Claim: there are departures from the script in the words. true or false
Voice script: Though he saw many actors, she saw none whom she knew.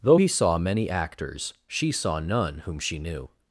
false